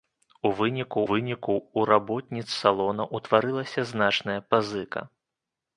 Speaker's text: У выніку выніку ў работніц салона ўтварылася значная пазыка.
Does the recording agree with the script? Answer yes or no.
yes